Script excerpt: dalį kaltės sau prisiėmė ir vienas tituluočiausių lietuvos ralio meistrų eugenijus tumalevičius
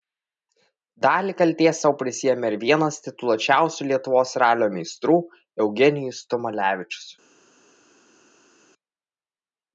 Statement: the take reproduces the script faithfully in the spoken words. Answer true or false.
true